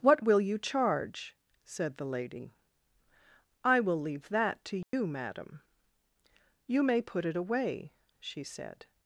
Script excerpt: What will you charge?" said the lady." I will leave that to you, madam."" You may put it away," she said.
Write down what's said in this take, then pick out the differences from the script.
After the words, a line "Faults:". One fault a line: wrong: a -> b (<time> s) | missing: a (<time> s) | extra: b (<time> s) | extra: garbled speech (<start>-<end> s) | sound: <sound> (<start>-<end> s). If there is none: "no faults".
What will you charge?" said the lady." I will leave that to you, madam."" You may put it away," she said.
Faults:
sound: dropout (4.8-4.9 s)